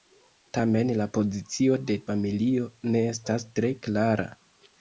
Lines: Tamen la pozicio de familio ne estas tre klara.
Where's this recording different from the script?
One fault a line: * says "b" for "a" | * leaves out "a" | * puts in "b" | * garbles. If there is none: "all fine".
all fine